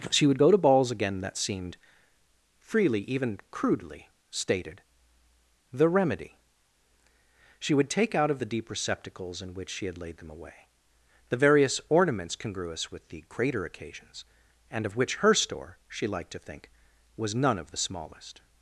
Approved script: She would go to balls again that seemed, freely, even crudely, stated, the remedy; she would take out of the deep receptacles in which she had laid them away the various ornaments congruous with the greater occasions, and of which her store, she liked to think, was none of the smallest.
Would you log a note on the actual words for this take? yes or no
no